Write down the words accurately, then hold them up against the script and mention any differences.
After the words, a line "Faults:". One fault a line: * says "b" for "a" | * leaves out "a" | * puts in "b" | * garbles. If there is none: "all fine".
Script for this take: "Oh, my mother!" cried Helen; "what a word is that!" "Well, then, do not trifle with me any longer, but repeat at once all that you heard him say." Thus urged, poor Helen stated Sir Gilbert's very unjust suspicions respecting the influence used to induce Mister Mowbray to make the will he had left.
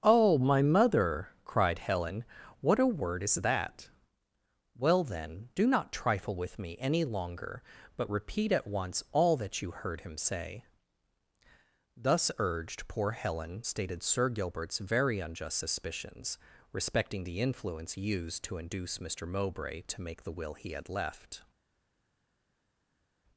"Oh, my mother!" cried Helen; "what a word is that!" "Well, then, do not trifle with me any longer, but repeat at once all that you heard him say." Thus urged, poor Helen stated Sir Gilbert's very unjust suspicions respecting the influence used to induce Mister Mowbray to make the will he had left.
Faults:
all fine